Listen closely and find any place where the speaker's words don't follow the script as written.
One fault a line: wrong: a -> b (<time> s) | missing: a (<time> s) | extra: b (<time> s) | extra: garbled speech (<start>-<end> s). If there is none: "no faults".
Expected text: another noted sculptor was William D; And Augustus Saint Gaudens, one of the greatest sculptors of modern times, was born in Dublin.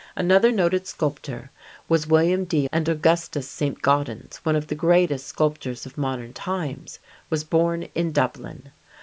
no faults